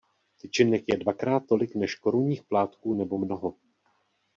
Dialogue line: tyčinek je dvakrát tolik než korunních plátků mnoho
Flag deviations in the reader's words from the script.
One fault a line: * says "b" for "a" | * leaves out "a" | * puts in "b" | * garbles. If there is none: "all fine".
* puts in "nebo"